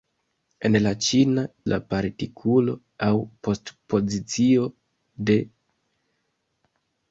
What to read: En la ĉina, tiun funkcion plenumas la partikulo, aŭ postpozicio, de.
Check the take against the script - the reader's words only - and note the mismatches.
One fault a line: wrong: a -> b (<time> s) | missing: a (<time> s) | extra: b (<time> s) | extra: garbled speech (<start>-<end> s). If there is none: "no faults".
missing: tiun funkcion plenumas (1.4 s)